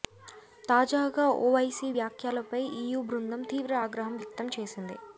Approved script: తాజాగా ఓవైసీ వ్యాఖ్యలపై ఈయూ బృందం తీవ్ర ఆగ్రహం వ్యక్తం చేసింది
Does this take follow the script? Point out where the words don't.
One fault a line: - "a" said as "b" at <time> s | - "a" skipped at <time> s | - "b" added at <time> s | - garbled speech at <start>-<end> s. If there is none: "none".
none